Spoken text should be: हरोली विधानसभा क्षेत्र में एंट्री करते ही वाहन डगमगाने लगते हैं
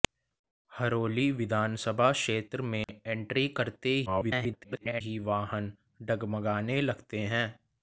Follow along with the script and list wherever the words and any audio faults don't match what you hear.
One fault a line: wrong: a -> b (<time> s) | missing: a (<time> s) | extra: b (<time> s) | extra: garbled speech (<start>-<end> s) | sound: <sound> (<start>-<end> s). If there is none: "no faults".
sound: dropout (2.8-2.9 s)
extra: garbled speech (4.1-5.0 s)